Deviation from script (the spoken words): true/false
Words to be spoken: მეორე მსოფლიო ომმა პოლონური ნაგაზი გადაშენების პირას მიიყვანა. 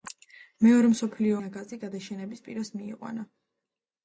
true